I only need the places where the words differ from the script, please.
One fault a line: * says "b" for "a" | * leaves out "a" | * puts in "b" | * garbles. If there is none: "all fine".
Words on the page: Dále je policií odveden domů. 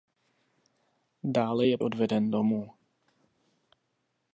* leaves out "policií"